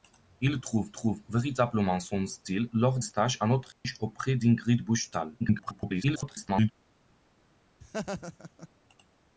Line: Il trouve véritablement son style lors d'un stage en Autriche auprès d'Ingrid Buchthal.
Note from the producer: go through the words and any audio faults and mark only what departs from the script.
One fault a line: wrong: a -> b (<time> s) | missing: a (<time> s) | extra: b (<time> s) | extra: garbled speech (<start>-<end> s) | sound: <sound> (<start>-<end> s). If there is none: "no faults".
extra: trouve (0.9 s)
missing: d'un (3.0 s)
sound: dropout (3.7-3.8 s)
extra: garbled speech (5.4-6.7 s)
sound: laugh (7.8-8.7 s)